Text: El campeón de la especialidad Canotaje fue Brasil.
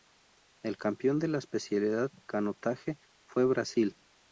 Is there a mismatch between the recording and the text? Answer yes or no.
no